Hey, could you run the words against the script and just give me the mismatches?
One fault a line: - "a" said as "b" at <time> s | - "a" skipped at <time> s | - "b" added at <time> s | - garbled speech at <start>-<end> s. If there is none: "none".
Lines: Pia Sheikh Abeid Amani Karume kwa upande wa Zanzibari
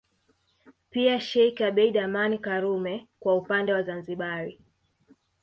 none